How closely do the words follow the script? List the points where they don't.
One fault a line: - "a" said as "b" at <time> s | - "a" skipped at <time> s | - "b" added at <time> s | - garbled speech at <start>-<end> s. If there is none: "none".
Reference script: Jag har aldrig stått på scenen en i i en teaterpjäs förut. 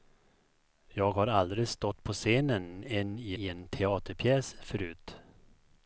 none